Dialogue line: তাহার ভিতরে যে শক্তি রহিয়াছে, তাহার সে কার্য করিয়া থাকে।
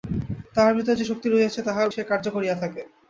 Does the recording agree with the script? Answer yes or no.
yes